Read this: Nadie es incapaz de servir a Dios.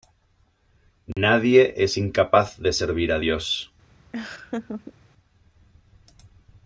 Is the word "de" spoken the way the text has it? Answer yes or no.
yes